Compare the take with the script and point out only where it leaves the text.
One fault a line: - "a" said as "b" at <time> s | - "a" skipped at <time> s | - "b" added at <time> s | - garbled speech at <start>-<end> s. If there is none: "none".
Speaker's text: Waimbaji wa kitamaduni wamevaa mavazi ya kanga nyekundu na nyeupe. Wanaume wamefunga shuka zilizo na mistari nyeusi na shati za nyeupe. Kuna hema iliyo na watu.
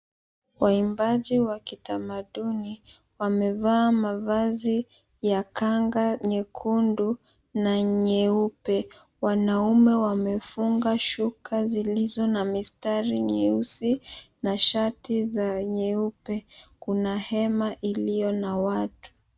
none